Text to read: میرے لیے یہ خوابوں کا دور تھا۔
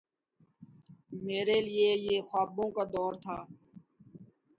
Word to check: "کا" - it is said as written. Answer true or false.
true